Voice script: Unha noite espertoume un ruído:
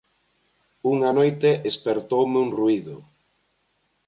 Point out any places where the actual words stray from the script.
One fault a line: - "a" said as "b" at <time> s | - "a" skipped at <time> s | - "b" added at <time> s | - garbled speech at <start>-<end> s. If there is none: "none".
none